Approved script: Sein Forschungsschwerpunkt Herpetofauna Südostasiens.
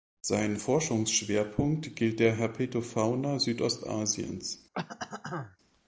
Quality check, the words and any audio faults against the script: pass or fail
fail